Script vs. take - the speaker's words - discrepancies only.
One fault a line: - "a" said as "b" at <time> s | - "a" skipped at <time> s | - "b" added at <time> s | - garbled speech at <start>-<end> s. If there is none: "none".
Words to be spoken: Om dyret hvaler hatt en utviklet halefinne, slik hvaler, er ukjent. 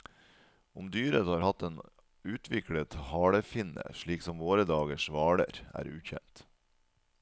- "hvaler" said as "har" at 1.3 s
- "som våre dagers" added at 4.2 s